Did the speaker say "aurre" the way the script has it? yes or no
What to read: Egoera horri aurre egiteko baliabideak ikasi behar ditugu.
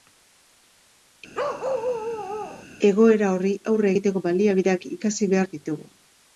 yes